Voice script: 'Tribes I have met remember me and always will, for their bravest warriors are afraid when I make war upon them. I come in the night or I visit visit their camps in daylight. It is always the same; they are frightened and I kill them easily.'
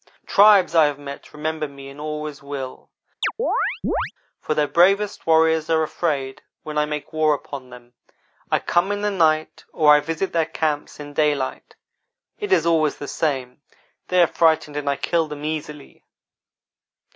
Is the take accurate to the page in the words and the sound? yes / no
no